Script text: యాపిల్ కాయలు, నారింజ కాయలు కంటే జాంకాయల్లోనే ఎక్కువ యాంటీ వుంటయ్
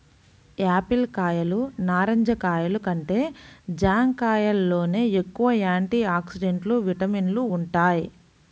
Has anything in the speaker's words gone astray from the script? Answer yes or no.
yes